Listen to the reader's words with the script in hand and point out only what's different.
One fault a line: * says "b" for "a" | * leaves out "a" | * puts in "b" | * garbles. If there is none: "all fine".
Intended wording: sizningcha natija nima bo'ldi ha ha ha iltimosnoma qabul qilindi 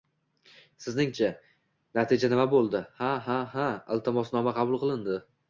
all fine